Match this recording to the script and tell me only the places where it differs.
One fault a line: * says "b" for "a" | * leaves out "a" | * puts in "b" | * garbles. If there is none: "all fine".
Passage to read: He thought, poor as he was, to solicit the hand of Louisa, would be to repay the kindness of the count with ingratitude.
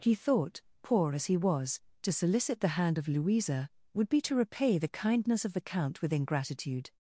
all fine